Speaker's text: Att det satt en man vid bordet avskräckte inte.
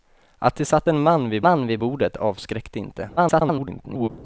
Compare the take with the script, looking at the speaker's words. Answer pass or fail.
fail